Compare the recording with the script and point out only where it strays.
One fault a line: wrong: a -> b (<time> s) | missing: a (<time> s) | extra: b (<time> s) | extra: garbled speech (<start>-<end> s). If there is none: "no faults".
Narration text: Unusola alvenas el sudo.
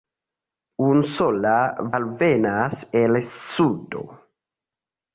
no faults